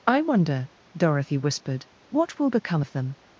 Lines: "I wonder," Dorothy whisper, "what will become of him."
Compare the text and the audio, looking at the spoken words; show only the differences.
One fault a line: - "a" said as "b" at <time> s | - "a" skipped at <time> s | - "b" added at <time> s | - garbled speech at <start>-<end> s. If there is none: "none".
- "whisper" said as "whispered" at 1.4 s
- "him" said as "them" at 2.9 s